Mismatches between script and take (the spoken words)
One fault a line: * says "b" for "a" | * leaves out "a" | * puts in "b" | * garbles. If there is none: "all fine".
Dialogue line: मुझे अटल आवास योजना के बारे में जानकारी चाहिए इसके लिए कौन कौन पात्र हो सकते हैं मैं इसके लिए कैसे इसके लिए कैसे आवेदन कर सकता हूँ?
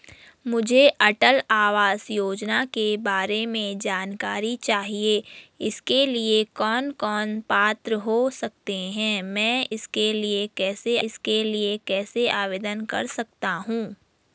all fine